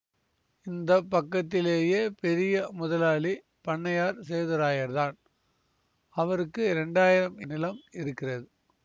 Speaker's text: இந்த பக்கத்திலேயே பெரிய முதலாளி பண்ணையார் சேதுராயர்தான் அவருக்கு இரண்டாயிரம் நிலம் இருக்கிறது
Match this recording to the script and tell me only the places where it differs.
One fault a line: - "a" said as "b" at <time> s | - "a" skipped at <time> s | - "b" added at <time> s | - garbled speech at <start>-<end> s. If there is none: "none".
none